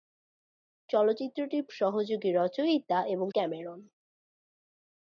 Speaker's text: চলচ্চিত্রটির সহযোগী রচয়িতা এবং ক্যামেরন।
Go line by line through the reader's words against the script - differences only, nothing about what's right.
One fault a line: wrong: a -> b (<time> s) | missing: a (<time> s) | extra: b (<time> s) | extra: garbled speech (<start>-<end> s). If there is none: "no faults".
no faults